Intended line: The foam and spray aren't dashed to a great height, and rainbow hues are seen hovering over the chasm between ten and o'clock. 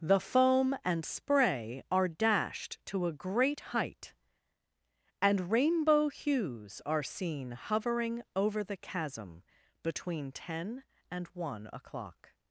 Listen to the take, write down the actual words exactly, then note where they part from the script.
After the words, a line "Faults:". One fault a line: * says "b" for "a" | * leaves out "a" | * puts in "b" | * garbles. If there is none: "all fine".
The foam and spray are dashed to a great height, and rainbow hues are seen hovering over the chasm between ten and one o'clock.
Faults:
* says "are" for "aren't"
* puts in "one"